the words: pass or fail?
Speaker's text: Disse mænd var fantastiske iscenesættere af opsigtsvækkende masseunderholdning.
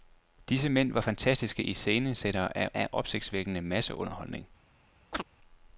fail